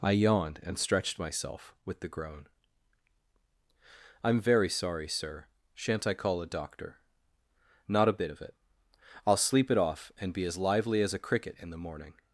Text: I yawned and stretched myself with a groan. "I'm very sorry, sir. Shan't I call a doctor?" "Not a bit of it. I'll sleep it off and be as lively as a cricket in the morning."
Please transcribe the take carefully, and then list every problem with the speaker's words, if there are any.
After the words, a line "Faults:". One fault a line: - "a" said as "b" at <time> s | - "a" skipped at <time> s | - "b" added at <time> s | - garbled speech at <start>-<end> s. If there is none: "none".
I yawned and stretched myself with the groan. "I'm very sorry, sir. Shan't I call a doctor?" "Not a bit of it. I'll sleep it off and be as lively as a cricket in the morning."
Faults:
- "a" said as "the" at 2.0 s